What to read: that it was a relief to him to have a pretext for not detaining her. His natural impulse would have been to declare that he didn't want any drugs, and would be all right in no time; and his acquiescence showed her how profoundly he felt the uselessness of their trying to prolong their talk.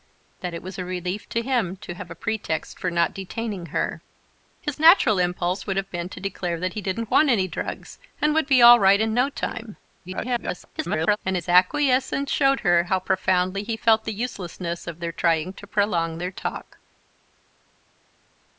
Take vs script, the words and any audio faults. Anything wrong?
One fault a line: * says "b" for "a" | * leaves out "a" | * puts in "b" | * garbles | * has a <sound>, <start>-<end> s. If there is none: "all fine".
* garbles